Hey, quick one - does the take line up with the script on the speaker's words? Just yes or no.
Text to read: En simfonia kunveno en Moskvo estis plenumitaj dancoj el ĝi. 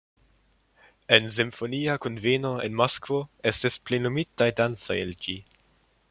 yes